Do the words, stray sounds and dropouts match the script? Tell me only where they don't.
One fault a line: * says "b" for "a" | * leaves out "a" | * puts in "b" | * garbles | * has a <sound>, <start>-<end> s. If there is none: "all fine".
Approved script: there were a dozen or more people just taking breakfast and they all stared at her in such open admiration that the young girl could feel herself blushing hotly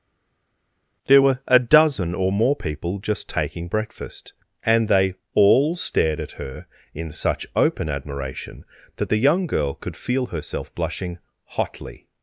all fine